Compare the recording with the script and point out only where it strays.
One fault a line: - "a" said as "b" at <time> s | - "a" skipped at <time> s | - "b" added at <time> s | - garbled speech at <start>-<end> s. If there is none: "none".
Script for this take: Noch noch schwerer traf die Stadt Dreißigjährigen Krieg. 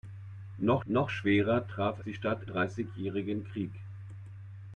none